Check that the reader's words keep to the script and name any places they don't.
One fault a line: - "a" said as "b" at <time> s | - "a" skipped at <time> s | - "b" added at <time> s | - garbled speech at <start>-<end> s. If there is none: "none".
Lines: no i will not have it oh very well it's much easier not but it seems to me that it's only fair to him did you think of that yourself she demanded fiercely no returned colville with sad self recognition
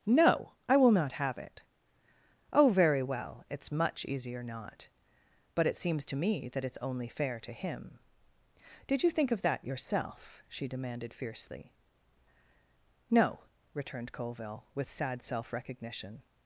none